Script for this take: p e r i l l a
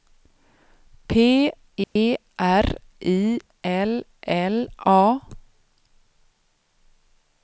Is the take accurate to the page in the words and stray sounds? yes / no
no